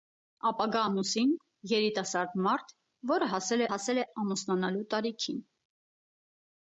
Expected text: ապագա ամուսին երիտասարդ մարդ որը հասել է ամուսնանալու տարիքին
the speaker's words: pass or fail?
fail